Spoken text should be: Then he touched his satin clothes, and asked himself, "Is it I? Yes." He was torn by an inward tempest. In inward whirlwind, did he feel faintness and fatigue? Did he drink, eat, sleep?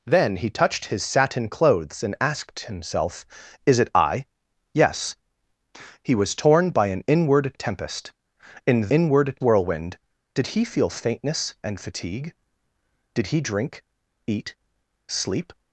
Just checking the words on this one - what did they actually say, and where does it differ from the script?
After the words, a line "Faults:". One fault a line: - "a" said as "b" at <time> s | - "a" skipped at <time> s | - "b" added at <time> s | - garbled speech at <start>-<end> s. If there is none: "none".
Then he touched his satin clothes, and asked himself, "Is it I? Yes." He was torn by an inward tempest. In inward whirlwind, did he feel faintness and fatigue? Did he drink, eat, sleep?
Faults:
none